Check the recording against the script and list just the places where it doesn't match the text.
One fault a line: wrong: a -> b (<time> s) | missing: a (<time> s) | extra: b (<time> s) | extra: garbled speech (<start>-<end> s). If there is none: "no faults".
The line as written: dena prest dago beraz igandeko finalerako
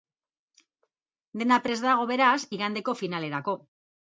no faults